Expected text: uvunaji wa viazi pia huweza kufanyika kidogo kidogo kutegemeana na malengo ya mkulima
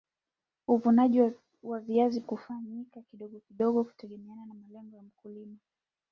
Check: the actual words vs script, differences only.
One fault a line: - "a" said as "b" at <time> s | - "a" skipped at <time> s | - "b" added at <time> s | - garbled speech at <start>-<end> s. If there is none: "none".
- "pia huweza" skipped at 2.2 s